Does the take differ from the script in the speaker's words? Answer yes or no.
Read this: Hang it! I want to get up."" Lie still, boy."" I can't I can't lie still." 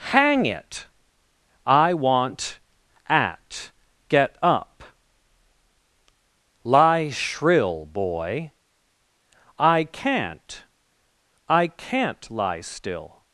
yes